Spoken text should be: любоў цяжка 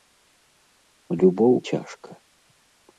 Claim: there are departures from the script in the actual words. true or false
false